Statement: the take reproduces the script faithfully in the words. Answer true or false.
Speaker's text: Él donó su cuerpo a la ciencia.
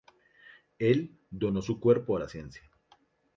true